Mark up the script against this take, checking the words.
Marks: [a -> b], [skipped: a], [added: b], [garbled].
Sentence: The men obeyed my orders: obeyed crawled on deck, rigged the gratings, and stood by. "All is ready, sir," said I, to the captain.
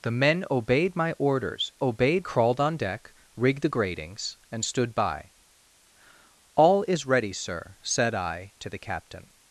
The men obeyed my orders: obeyed crawled on deck, rigged the gratings, and stood by. "All is ready, sir," said I, to the captain.